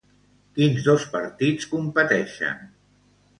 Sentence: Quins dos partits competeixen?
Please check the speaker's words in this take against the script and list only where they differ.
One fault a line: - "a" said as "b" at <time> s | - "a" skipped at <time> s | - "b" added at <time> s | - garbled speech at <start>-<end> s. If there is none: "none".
none